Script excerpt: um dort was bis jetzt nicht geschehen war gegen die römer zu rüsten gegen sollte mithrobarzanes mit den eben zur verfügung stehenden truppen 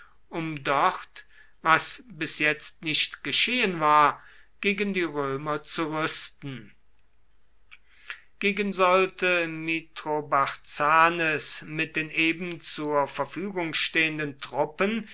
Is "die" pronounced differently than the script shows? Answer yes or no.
no